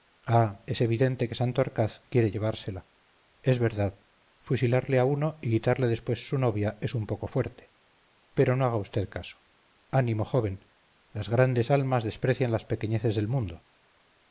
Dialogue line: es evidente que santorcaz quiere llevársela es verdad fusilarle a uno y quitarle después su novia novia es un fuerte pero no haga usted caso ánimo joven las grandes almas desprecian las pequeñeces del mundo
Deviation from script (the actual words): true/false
true